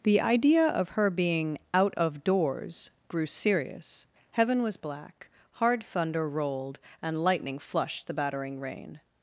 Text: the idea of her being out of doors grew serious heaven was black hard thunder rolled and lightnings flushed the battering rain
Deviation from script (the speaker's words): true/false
true